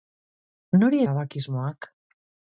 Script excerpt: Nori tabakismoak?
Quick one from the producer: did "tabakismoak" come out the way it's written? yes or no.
yes